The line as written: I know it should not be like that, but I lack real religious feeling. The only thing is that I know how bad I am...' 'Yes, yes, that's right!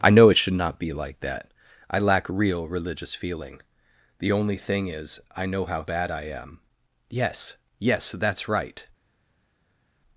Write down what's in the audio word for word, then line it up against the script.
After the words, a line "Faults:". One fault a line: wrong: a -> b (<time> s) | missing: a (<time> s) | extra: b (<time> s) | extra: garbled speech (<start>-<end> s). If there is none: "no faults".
I know it should not be like that, I lack real religious feeling. The only thing is I know how bad I am...' 'Yes, yes, that's right!
Faults:
missing: but (1.5 s)
missing: that (5.2 s)